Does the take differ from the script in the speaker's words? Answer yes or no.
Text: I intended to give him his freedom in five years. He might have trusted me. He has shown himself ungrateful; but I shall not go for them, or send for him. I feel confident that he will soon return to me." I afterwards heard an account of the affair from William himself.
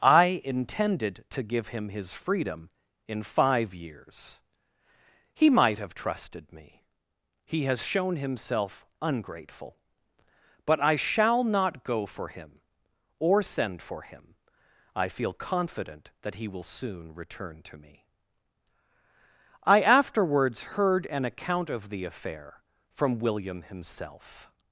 yes